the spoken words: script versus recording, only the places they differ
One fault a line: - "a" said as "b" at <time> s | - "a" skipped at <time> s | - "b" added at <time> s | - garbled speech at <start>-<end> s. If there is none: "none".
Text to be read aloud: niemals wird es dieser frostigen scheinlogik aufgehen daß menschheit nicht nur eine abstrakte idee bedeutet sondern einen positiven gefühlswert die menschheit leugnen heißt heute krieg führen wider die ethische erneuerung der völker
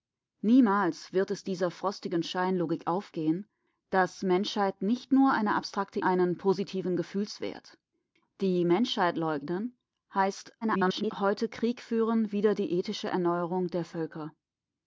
- "idee bedeutet sondern" skipped at 6.0 s
- garbled speech at 10.6-11.1 s